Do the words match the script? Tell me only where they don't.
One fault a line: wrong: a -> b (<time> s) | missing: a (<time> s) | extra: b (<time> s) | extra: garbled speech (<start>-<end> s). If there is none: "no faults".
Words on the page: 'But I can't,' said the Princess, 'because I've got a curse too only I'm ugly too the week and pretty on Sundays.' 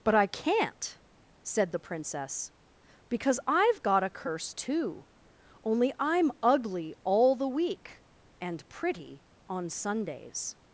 wrong: too -> all (7.0 s)